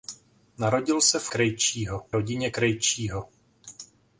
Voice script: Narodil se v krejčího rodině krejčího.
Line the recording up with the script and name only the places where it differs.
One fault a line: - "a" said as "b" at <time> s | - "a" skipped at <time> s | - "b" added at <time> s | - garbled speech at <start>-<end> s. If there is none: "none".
none